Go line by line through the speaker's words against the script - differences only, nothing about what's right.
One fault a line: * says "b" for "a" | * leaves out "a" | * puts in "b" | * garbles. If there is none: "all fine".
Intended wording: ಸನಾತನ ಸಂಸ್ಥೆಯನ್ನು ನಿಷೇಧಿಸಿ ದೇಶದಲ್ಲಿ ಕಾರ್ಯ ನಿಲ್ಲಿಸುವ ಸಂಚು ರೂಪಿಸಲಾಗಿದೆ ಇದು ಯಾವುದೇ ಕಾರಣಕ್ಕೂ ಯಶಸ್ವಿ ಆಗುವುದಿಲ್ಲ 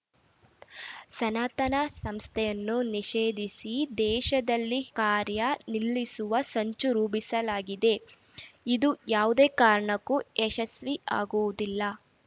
all fine